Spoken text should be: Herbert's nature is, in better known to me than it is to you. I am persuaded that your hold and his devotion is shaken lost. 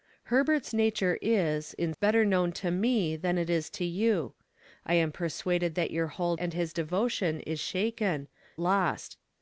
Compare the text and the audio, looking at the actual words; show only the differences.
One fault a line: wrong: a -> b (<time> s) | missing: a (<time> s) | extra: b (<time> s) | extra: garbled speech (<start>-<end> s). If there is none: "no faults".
no faults